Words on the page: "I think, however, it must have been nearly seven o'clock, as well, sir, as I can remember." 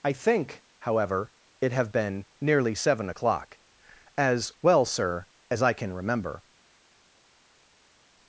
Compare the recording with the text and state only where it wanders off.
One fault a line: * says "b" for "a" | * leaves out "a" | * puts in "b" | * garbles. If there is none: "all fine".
* leaves out "must"